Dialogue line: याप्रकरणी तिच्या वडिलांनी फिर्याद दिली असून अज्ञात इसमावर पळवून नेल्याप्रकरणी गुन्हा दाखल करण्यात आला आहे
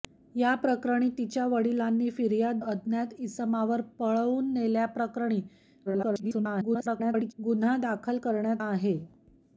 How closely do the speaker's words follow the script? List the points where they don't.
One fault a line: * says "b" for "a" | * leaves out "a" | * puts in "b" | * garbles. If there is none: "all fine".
* leaves out "दिली असून"
* garbles
* leaves out "आला"